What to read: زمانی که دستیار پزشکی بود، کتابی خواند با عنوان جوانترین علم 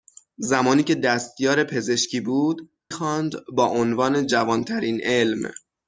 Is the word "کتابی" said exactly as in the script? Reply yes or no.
no